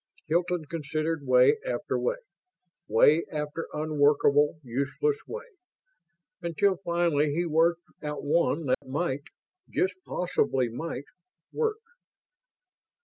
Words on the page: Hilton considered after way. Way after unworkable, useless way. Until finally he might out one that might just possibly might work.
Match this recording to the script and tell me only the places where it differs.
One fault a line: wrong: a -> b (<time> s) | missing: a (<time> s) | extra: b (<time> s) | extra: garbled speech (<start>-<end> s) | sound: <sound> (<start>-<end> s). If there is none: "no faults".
extra: way (1.3 s)
wrong: might -> worked (7.5 s)
sound: dropout (8.7-8.8 s)